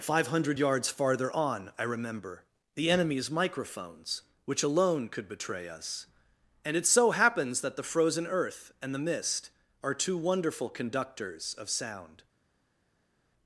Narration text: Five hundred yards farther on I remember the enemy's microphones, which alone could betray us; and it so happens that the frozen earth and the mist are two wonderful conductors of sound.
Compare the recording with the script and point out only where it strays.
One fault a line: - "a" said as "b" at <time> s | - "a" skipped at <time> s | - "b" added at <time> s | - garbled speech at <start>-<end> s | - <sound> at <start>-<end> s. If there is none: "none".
none